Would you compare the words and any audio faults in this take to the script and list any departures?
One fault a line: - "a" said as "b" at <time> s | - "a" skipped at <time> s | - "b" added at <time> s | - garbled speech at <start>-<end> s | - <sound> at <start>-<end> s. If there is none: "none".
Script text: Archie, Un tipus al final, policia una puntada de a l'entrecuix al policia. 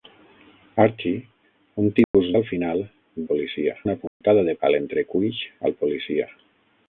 - dropout at 2.0-2.1 s
- dropout at 4.1-4.2 s